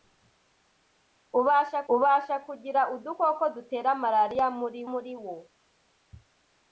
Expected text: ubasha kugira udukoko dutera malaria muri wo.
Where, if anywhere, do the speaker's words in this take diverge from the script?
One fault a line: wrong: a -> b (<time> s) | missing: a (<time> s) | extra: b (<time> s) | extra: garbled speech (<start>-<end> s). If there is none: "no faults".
extra: ubasha (1.9 s)
extra: muri (4.9 s)